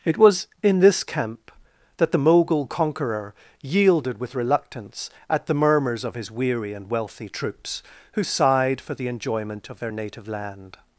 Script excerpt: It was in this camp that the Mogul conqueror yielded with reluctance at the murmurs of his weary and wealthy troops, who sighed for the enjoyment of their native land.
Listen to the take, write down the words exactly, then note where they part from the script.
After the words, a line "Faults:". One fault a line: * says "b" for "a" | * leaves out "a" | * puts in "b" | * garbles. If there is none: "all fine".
It was in this camp that the Mogul conqueror yielded with reluctance at the murmurs of his weary and wealthy troops, who sighed for the enjoyment of their native land.
Faults:
all fine